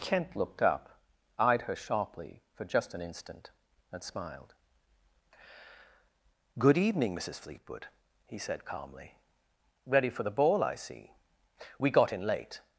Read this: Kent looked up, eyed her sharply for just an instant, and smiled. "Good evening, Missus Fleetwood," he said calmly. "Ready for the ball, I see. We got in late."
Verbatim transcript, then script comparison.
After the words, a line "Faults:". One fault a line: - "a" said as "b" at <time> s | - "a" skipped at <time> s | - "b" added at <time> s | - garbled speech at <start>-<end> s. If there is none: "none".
Kent looked up, eyed her sharply for just an instant, and smiled. "Good evening, Missus Fleetwood," he said calmly. "Ready for the ball, I see. We got in late."
Faults:
none